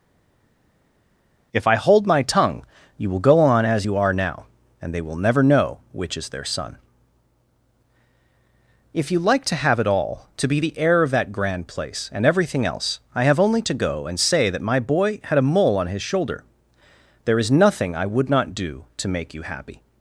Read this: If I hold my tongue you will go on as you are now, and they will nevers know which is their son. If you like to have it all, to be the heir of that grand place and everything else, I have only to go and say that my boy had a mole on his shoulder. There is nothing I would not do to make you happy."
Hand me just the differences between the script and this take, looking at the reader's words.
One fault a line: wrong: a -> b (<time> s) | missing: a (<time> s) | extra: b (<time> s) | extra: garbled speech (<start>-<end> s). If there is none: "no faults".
wrong: nevers -> never (5.1 s)